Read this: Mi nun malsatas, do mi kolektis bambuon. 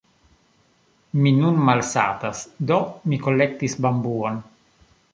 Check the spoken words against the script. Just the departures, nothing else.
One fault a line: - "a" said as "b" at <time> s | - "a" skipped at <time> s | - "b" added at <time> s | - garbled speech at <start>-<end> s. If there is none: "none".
none